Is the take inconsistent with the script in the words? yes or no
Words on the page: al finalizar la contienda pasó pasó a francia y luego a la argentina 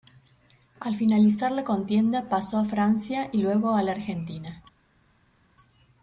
yes